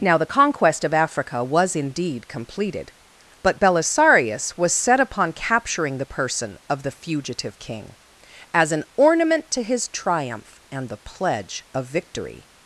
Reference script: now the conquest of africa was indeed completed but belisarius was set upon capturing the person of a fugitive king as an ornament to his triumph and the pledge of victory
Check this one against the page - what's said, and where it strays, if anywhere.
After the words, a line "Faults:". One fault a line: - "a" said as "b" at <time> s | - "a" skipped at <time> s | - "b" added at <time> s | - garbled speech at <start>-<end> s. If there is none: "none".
now the conquest of africa was indeed completed but belisarius was set upon capturing the person of the fugitive king as an ornament to his triumph and the pledge of victory
Faults:
- "a" said as "the" at 6.8 s